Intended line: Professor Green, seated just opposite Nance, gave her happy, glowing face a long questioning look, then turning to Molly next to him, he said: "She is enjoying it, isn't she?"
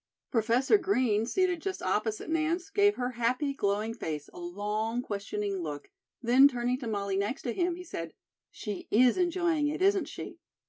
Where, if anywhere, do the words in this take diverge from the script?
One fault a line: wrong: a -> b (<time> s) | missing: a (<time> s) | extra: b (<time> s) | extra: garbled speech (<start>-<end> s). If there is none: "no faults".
no faults